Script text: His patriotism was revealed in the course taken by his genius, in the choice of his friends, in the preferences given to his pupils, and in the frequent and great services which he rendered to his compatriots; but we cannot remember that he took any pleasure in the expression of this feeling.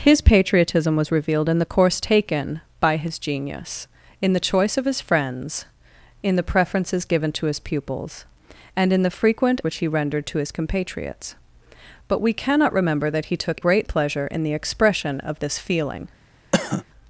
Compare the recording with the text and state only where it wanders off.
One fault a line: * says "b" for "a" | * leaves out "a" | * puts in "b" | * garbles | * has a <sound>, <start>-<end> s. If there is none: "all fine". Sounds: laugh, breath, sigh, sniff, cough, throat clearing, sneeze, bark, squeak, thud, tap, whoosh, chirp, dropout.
* leaves out "and great services"
* says "great" for "any"
* has a cough, 16.5-16.8 s